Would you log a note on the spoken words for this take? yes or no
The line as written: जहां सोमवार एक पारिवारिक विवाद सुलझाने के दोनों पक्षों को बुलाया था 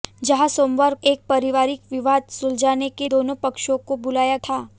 no